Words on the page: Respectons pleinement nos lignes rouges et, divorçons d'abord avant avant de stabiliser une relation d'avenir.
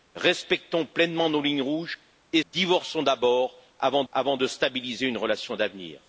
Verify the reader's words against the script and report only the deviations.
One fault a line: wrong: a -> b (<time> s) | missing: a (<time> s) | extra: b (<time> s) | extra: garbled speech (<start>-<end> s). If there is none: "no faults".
no faults